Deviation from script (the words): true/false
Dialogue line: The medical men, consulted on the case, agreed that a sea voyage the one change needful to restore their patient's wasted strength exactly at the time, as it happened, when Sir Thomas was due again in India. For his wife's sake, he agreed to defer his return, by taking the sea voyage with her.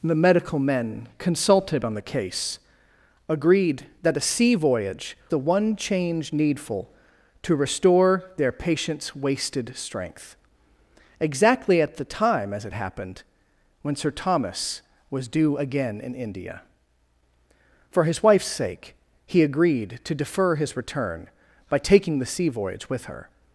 false